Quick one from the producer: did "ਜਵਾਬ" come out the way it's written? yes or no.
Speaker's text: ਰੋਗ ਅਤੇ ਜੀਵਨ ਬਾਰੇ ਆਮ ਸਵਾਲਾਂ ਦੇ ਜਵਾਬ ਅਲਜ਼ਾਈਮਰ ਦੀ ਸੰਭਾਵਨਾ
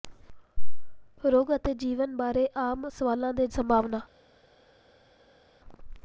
no